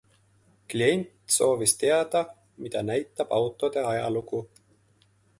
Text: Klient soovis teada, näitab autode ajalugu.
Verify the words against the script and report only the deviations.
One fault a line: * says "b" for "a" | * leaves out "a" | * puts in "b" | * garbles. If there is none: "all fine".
* puts in "mida"